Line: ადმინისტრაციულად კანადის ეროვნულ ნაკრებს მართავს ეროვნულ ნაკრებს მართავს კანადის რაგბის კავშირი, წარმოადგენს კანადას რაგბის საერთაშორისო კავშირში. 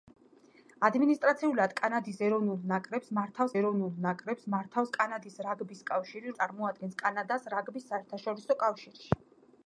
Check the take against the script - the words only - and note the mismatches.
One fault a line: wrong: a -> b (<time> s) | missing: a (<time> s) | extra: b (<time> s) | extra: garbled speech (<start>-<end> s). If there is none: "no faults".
no faults